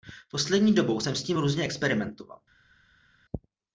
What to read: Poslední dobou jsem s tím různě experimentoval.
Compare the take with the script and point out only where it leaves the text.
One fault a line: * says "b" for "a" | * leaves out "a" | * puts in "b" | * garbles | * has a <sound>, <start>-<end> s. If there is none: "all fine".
all fine